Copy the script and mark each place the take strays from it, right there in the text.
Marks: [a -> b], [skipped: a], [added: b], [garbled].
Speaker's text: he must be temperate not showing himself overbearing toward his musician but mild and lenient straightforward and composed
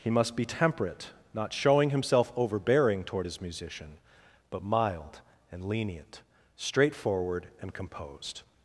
he must be temperate not showing himself overbearing toward his musician but mild and lenient straightforward and composed